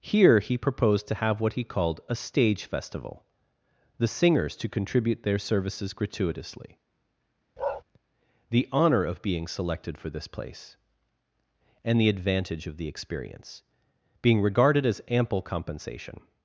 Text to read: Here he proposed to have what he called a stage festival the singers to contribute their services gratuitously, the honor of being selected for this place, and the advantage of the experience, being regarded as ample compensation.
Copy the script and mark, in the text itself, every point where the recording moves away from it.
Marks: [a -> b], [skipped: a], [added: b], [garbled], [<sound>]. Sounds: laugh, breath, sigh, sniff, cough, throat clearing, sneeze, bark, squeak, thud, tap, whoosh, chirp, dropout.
Here he proposed to have what he called a stage festival the singers to contribute their services gratuitously, [bark] the honor of being selected for this place, and the advantage of the experience, being regarded as ample compensation.